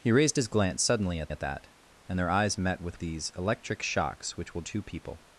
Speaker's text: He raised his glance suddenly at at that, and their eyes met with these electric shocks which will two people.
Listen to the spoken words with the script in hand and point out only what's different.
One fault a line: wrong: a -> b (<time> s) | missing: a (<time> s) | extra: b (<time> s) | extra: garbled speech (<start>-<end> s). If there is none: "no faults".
no faults